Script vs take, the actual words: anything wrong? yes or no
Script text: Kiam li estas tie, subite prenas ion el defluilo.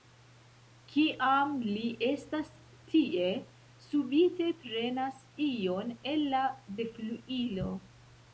yes